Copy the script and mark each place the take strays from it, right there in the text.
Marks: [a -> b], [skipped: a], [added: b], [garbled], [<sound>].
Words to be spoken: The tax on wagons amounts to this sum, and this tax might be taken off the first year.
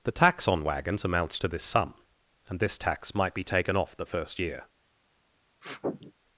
The tax on wagons amounts to this sum, and this tax might be taken off the first year. [sniff]